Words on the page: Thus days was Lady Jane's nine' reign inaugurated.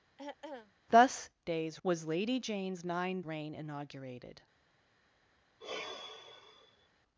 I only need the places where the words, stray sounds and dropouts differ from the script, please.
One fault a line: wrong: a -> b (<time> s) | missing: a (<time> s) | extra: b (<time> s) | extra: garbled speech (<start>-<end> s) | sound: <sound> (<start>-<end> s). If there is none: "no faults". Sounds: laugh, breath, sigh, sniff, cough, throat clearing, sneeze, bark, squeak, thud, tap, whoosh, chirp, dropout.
sound: throat clearing (0.2-0.7 s)
sound: sigh (5.6-6.9 s)